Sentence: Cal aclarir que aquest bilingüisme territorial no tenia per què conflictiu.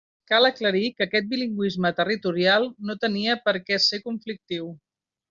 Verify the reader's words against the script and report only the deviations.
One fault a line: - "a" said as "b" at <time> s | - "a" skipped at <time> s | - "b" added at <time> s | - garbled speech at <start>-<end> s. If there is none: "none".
- "ser" added at 3.9 s